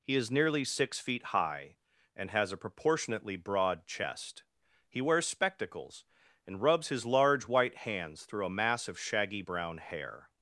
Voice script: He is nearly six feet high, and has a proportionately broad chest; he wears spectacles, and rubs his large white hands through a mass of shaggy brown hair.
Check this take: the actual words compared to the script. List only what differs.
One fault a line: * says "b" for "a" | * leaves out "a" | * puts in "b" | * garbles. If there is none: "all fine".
all fine